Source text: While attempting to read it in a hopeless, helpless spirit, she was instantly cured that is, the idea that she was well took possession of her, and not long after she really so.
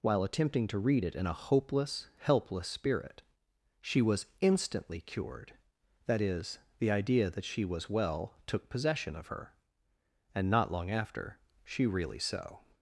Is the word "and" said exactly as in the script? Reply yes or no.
yes